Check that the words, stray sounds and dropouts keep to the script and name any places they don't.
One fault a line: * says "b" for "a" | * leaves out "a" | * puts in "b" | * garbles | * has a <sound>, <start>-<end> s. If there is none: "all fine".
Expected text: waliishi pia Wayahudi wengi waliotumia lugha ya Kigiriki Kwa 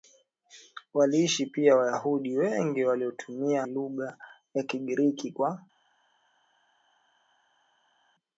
all fine